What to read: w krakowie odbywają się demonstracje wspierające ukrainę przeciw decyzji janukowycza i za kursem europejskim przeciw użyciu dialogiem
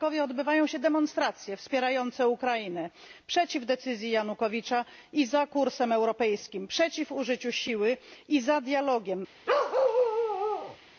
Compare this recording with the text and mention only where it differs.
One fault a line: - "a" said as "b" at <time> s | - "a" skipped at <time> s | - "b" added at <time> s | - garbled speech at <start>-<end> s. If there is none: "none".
- "siły i za" added at 7.5 s